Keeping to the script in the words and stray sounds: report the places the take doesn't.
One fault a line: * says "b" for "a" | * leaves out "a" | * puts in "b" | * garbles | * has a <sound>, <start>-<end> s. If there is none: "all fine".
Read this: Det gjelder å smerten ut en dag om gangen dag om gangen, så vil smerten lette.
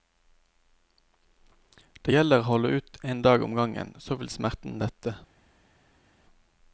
* says "holde" for "smerten"
* leaves out "dag om gangen"